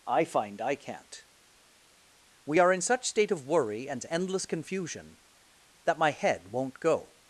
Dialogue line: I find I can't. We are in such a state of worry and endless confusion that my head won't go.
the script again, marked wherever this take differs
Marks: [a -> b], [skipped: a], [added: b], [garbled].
I find I can't. We are in such [skipped: a] state of worry and endless confusion that my head won't go.